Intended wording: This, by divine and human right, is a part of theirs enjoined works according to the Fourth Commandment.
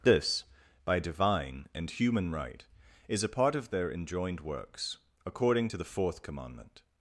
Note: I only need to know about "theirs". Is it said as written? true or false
false